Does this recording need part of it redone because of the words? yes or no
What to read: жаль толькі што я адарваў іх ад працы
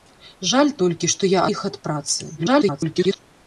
yes